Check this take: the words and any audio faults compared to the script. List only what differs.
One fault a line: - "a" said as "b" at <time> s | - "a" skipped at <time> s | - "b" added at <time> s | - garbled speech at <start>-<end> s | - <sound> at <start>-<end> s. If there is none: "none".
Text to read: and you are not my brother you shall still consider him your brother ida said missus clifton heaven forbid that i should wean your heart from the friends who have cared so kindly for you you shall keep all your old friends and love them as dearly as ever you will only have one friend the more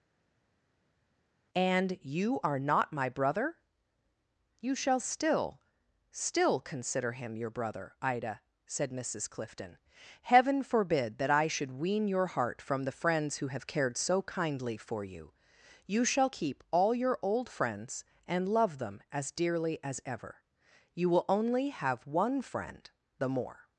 - "still" added at 6.1 s